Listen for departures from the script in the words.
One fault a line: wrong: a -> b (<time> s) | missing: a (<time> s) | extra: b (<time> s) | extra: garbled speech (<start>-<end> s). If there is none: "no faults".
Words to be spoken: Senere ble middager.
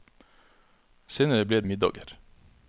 no faults